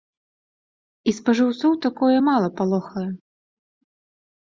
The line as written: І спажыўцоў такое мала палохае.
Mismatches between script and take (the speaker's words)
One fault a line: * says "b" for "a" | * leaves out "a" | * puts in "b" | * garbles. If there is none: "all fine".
all fine